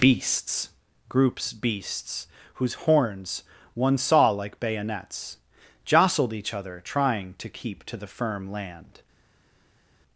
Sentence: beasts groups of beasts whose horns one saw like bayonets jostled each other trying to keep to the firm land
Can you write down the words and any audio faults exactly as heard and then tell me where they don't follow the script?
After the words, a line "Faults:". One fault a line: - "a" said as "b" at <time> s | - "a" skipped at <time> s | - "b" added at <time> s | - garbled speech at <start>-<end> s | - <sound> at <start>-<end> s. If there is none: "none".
beasts groups beasts whose horns one saw like bayonets jostled each other trying to keep to the firm land
Faults:
- "of" skipped at 1.5 s